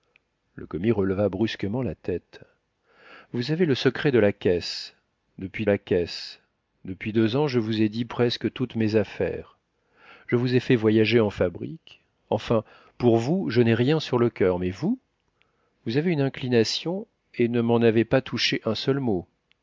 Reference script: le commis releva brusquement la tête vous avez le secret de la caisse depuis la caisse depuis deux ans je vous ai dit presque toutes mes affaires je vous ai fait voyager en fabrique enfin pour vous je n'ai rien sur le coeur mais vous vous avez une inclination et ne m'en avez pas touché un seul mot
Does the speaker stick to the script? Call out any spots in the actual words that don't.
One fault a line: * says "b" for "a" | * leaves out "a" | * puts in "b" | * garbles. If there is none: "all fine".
all fine